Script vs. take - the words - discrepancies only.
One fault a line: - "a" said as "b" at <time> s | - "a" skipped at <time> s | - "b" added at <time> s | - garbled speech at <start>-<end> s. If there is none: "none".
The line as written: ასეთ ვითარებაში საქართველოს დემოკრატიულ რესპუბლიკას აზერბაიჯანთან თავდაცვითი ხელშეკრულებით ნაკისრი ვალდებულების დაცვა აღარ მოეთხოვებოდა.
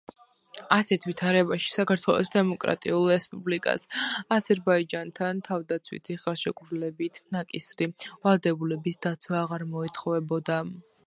none